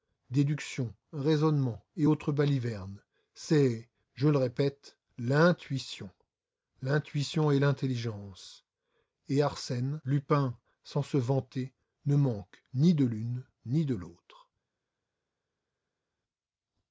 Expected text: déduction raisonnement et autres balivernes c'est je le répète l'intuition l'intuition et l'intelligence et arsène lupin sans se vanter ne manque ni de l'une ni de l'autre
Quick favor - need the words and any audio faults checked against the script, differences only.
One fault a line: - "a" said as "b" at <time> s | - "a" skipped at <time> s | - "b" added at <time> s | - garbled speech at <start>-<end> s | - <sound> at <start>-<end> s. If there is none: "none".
none